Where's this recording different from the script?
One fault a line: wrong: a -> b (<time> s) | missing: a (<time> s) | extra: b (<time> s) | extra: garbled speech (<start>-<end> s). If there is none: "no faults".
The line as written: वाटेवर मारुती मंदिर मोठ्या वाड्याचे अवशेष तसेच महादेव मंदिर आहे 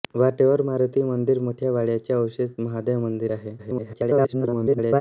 missing: तसेच (2.5 s)
extra: garbled speech (3.6-5.0 s)